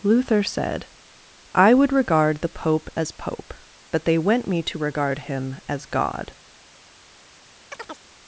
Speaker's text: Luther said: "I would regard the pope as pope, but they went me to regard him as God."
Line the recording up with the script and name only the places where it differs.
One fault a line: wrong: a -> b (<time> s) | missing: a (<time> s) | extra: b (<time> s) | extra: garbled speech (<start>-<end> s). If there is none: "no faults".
no faults